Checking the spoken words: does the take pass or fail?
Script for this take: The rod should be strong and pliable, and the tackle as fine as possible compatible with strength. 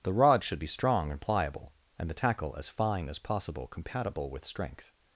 pass